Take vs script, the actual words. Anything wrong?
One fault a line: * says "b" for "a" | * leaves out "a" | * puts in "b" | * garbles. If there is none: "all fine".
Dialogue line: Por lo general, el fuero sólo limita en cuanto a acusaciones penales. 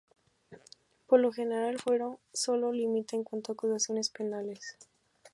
all fine